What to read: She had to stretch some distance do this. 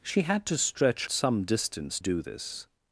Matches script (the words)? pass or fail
pass